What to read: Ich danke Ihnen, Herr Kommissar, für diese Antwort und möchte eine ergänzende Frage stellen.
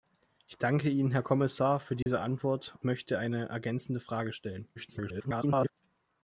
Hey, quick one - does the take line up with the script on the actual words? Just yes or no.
no